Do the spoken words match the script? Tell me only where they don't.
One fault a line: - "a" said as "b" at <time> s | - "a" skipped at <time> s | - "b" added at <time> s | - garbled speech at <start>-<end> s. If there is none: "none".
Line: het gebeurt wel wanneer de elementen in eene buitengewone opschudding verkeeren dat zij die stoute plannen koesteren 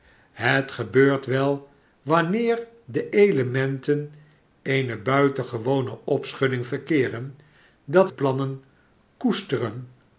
- "in" skipped at 4.1 s
- "zij die stoute" skipped at 8.1 s